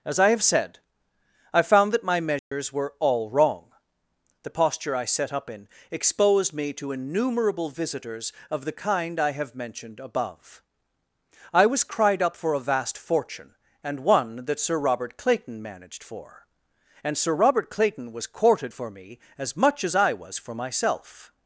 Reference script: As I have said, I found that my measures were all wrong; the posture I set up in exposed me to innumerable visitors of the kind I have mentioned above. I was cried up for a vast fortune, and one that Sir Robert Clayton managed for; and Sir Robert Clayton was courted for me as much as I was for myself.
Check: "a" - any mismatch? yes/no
no